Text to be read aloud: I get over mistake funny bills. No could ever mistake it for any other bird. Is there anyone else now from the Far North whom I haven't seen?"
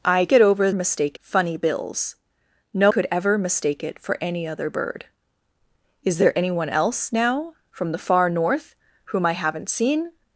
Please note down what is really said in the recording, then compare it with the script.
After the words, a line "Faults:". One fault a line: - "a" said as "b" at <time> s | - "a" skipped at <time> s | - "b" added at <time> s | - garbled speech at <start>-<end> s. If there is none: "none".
I get over mistake funny bills. No could ever mistake it for any other bird. Is there anyone else now from the Far North whom I haven't seen?"
Faults:
none